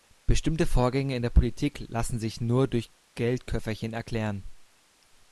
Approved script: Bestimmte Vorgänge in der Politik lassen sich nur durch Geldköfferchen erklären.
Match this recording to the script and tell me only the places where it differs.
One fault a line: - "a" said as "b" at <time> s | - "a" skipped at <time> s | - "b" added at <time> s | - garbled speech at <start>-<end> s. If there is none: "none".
none